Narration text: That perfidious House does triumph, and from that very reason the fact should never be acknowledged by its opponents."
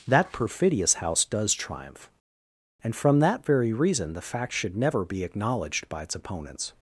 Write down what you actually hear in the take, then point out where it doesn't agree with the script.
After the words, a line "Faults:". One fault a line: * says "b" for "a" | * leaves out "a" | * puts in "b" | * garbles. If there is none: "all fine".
That perfidious House does triumph, and from that very reason the fact should never be acknowledged by its opponents."
Faults:
all fine